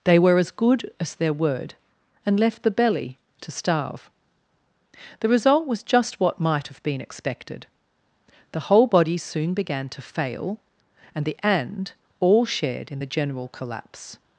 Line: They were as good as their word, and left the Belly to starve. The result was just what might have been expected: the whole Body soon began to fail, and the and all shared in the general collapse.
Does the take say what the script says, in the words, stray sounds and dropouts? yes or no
yes